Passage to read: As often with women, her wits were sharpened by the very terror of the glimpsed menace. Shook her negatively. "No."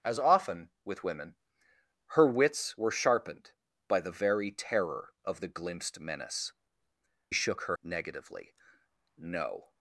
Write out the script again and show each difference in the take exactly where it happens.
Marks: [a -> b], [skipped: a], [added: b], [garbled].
As often with women, her wits were sharpened by the very terror of the glimpsed menace. Shook her negatively. "No."